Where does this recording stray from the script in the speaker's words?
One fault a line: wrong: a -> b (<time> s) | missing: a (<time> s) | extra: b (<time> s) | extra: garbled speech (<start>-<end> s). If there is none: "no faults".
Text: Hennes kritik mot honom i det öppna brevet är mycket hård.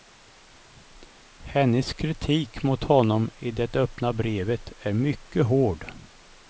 no faults